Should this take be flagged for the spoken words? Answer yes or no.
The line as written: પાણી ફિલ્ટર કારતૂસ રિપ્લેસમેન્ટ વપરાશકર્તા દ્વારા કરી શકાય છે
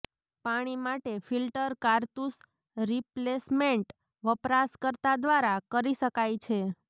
yes